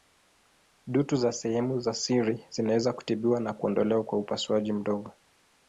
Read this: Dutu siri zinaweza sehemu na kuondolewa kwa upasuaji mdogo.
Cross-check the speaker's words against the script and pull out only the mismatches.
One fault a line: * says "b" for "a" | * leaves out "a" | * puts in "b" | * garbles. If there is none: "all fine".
* puts in "za sehemu za"
* says "kutibiwa" for "sehemu"